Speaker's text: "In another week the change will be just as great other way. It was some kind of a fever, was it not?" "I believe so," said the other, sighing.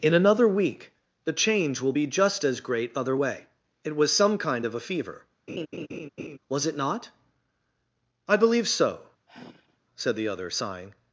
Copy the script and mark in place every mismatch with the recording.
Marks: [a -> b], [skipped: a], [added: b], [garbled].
"In another week the change will be just as great other way. It was some kind of a fever, was it not?" "I believe so," said the other, sighing.